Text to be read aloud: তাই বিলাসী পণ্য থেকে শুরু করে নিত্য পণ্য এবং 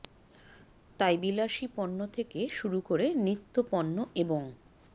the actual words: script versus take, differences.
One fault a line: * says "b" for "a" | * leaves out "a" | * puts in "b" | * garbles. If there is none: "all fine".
all fine